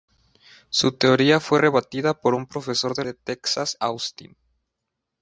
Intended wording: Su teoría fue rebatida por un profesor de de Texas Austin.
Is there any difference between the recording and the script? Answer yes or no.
no